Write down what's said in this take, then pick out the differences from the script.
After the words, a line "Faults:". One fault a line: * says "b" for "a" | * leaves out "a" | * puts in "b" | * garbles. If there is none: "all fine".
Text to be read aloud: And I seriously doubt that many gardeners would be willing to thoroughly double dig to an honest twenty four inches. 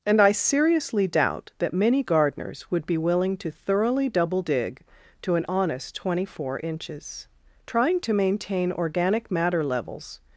And I seriously doubt that many gardeners would be willing to thoroughly double dig to an honest twenty four inches. Trying to maintain organic matter levels
Faults:
* puts in "Trying to maintain organic matter levels"